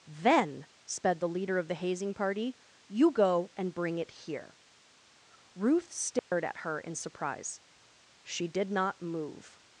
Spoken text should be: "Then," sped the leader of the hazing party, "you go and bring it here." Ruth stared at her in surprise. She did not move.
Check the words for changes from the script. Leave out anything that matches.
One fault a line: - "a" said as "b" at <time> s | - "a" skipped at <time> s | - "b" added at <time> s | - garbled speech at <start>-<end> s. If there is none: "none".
none